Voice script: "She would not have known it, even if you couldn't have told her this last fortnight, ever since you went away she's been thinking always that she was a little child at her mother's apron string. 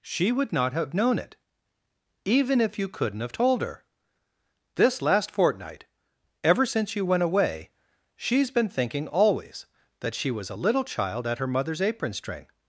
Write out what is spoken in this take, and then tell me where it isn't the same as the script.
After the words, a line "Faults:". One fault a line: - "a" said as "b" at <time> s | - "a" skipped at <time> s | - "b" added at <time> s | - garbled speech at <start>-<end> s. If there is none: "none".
"She would not have known it, even if you couldn't have told her this last fortnight, ever since you went away she's been thinking always that she was a little child at her mother's apron string.
Faults:
none